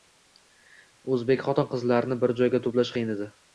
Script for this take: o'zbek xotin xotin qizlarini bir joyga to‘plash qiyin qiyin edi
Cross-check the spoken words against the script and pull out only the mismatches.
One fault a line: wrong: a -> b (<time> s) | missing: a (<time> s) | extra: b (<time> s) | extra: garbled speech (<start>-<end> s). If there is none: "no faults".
missing: xotin (1.7 s)
missing: qiyin (3.2 s)